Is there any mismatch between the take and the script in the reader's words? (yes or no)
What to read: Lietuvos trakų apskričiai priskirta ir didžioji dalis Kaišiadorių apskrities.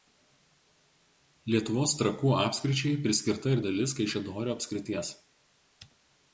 yes